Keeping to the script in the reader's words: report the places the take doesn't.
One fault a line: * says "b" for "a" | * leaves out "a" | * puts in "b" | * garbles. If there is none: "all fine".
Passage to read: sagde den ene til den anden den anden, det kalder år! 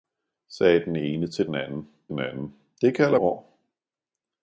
all fine